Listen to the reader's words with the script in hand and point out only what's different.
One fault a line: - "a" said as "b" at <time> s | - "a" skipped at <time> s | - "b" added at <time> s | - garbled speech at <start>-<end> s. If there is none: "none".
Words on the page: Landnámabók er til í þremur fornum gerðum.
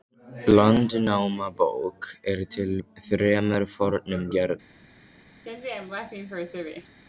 none